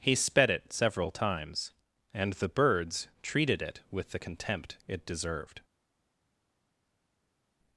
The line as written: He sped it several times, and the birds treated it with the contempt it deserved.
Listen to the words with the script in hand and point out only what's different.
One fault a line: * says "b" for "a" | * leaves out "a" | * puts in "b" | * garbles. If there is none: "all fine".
all fine